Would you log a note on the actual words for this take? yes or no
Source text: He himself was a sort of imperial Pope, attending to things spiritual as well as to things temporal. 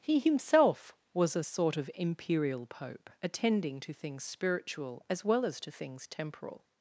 no